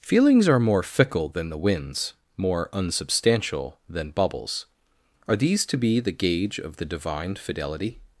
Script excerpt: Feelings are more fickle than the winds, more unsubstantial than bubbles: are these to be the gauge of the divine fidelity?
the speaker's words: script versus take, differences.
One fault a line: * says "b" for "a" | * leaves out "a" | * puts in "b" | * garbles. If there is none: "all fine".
all fine